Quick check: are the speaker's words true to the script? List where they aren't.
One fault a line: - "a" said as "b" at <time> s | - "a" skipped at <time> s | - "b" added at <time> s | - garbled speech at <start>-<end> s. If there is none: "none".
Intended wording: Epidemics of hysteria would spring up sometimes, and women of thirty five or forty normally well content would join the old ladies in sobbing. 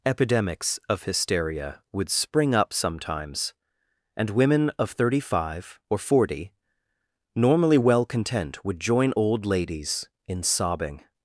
- "the" skipped at 9.1 s